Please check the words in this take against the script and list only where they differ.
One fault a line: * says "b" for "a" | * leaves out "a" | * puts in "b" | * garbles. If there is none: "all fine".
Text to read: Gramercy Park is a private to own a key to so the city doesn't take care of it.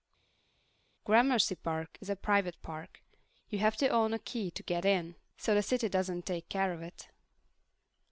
* puts in "park You have"
* puts in "get in"